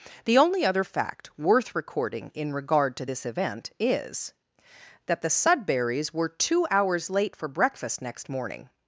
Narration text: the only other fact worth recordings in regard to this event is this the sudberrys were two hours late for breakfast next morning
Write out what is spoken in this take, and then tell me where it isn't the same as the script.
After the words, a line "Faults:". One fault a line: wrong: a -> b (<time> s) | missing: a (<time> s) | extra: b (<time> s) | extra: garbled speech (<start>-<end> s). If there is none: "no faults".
the only other fact worth recording in regard to this event is that the sudberrys were two hours late for breakfast next morning
Faults:
wrong: recordings -> recording (1.8 s)
wrong: this -> that (5.1 s)